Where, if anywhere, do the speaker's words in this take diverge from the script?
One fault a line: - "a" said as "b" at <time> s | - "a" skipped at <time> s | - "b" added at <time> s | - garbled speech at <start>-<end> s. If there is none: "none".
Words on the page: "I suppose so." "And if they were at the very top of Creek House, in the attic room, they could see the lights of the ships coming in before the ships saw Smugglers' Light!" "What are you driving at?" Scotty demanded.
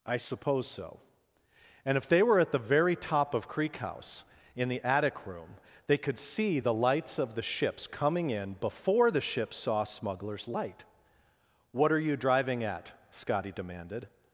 none